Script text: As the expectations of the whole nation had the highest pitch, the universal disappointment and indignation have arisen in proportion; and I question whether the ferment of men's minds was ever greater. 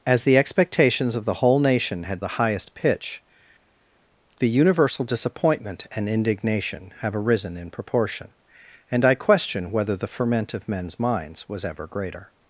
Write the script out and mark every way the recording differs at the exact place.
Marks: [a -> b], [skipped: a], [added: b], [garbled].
As the expectations of the whole nation had the highest pitch, the universal disappointment and indignation have arisen in proportion; and I question whether the ferment of men's minds was ever greater.